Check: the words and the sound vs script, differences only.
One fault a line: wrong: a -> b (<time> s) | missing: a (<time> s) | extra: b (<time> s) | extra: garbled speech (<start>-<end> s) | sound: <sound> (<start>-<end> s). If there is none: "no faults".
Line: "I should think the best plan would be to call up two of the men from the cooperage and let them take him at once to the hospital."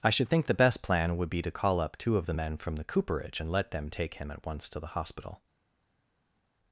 no faults